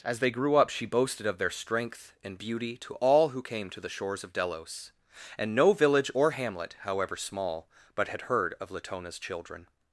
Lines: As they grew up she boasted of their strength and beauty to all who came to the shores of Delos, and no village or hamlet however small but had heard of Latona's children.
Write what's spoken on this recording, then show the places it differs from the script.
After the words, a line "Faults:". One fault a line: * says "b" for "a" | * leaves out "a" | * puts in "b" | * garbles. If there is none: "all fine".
As they grew up she boasted of their strength and beauty to all who came to the shores of Delos, and no village or hamlet however small but had heard of Latona's children.
Faults:
all fine